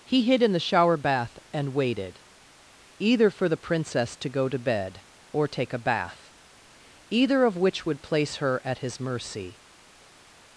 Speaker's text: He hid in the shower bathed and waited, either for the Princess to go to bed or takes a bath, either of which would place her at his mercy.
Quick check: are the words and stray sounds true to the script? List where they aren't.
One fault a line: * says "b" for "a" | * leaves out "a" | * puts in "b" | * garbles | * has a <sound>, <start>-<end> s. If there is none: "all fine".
* says "bath" for "bathed"
* says "take" for "takes"